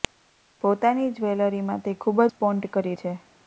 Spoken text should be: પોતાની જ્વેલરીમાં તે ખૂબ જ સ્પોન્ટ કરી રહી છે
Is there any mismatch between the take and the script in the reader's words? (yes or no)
yes